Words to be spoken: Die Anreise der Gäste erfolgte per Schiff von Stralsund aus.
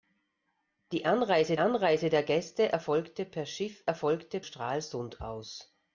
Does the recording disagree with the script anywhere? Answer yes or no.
yes